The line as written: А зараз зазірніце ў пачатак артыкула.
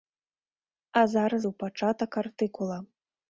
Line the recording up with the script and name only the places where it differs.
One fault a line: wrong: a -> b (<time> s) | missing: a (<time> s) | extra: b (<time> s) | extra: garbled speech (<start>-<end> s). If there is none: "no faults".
missing: зазірніце (1.4 s)